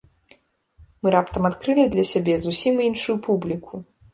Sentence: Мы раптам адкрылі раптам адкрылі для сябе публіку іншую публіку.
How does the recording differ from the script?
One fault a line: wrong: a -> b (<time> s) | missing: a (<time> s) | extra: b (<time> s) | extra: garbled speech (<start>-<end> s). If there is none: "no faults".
missing: раптам адкрылі (1.9 s)
wrong: публіку -> зусім (2.5 s)